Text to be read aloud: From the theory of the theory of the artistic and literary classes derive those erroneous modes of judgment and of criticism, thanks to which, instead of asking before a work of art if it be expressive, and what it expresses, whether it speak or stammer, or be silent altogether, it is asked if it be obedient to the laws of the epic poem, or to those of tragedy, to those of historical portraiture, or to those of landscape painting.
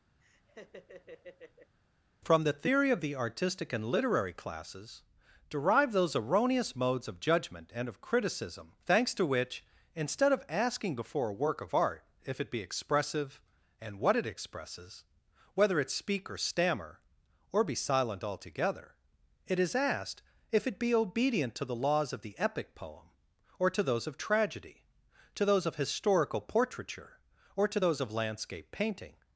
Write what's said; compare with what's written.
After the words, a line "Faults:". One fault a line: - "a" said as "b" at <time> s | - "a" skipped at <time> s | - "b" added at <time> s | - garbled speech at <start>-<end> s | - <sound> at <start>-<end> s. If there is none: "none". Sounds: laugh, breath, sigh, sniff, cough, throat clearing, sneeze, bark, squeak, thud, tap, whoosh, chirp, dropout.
From the theory of the artistic and literary classes derive those erroneous modes of judgment and of criticism, thanks to which, instead of asking before a work of art if it be expressive, and what it expresses, whether it speak or stammer, or be silent altogether, it is asked if it be obedient to the laws of the epic poem, or to those of tragedy, to those of historical portraiture, or to those of landscape painting.
Faults:
- laugh at 0.2-1.8 s
- "theory of the" skipped at 3.2 s